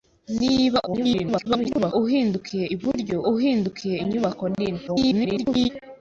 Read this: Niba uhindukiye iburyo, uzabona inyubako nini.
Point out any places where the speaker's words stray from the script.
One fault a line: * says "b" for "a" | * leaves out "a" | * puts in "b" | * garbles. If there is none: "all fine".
* garbles
* says "uhindukiye" for "uzabona"
* garbles